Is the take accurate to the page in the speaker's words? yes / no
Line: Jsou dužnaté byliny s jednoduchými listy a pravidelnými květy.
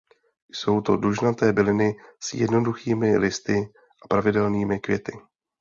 no